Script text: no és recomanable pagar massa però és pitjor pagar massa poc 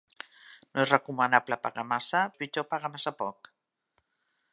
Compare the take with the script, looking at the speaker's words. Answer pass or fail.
fail